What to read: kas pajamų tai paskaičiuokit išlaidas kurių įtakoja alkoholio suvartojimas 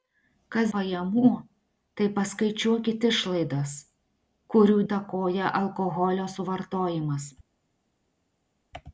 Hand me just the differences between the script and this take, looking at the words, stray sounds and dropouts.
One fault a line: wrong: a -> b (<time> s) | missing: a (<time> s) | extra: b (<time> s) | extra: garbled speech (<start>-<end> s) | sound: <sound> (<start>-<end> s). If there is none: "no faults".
no faults